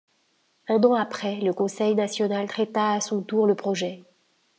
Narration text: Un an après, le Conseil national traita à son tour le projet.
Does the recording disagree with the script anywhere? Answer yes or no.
no